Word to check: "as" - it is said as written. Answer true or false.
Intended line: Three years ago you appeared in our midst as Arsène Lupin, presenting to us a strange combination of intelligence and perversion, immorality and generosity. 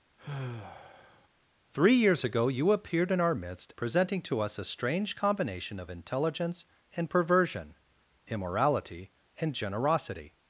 false